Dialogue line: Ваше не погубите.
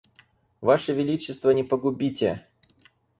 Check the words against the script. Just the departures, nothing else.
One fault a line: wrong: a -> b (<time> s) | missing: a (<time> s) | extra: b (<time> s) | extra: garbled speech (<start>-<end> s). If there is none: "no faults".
extra: величество (0.9 s)